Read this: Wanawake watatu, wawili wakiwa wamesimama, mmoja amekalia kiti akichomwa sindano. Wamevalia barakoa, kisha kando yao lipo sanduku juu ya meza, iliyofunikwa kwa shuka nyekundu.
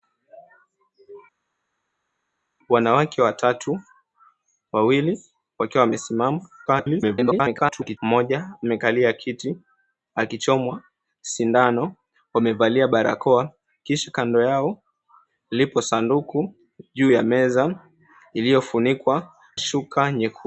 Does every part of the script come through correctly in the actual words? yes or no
no